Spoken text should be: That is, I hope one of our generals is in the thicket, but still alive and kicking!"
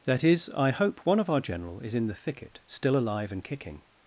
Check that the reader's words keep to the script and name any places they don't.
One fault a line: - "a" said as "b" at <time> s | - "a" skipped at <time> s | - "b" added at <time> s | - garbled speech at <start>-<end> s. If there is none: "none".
- "generals" said as "general" at 1.4 s
- "but" skipped at 2.6 s